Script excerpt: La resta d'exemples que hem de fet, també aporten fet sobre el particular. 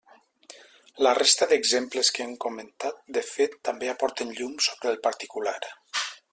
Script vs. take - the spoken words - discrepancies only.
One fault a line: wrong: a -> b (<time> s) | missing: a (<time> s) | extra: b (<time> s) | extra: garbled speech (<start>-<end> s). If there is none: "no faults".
extra: comentat (2.5 s)
wrong: fet -> llum (4.4 s)